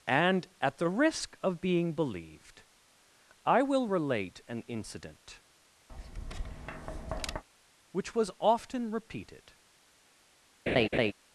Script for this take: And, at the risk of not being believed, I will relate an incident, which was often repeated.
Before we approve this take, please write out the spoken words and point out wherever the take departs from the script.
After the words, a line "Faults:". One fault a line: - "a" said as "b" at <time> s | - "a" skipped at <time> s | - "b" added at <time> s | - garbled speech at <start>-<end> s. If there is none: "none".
And, at the risk of being believed, I will relate an incident, which was often repeated.
Faults:
- "not" skipped at 1.6 s